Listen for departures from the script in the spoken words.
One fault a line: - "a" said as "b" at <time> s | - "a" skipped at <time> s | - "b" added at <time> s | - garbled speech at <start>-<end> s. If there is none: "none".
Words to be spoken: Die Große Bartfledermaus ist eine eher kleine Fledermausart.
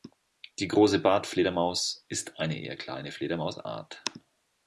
none